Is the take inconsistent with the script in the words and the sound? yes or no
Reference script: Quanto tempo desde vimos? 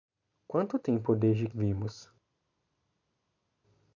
no